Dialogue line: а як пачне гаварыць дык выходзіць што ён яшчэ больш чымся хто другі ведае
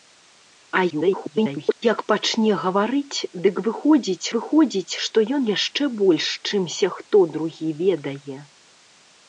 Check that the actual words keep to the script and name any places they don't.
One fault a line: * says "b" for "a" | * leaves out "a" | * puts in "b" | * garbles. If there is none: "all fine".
* garbles
* puts in "выходзіць"